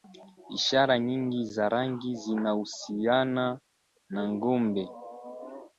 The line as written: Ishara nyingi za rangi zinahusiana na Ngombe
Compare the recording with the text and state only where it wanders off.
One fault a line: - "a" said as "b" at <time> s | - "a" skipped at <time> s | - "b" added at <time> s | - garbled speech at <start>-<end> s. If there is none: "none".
none